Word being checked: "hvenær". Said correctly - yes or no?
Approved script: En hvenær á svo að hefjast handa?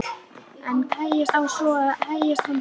no